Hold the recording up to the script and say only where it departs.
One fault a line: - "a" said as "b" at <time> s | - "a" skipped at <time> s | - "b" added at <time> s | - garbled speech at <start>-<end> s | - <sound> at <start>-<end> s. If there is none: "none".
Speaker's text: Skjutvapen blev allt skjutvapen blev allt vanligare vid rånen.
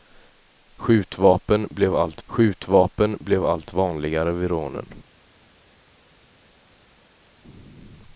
none